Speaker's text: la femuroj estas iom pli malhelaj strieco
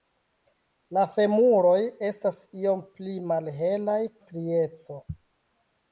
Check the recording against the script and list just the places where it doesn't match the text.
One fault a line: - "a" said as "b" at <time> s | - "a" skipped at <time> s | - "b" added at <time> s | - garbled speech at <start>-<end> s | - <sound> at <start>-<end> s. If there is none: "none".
none